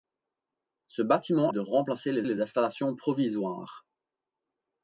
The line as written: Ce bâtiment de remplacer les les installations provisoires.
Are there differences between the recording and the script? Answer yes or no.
no